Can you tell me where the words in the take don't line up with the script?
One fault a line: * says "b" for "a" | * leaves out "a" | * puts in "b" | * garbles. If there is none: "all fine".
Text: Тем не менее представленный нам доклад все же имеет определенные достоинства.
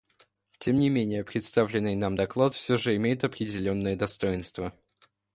all fine